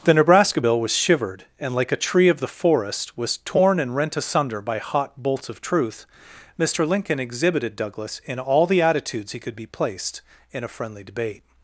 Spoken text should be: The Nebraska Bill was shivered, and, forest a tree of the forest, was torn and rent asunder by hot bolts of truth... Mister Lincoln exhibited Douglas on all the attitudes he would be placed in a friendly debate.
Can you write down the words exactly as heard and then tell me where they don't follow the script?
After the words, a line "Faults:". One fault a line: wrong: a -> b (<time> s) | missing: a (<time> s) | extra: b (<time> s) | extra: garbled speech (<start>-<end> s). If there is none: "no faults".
The Nebraska Bill was shivered, and, like a tree of the forest, was torn and rent asunder by hot bolts of truth... Mister Lincoln exhibited Douglas in all the attitudes he could be placed in a friendly debate.
Faults:
wrong: forest -> like (1.8 s)
wrong: on -> in (8.3 s)
wrong: would -> could (9.4 s)